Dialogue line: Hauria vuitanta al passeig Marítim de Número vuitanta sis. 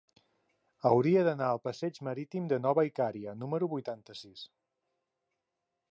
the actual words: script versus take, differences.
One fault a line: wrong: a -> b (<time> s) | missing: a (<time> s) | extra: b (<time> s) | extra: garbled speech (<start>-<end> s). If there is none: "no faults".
wrong: vuitanta -> d'anar (1.3 s)
extra: Nova Icària (2.7 s)